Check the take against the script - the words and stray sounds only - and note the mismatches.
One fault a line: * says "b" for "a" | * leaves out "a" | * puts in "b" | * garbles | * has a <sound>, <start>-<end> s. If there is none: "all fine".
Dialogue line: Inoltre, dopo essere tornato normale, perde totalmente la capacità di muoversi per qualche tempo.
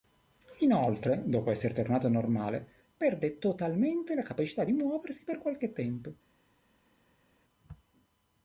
all fine